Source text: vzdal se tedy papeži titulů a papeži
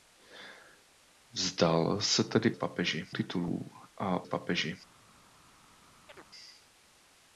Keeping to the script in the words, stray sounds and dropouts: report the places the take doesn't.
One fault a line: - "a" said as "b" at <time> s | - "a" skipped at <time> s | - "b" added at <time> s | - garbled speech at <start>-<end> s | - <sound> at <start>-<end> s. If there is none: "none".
- chirp at 6.1-6.3 s